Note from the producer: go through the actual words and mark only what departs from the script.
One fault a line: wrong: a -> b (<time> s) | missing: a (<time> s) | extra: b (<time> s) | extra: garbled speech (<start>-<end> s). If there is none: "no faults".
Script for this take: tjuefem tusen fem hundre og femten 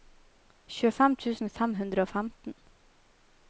no faults